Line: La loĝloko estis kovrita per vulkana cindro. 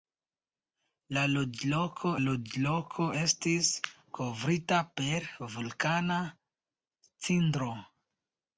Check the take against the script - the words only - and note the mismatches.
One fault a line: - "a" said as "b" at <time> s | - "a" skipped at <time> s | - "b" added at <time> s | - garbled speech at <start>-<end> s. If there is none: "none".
- "loĝloko" added at 2.2 s